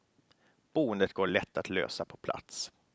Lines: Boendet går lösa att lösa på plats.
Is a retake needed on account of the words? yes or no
yes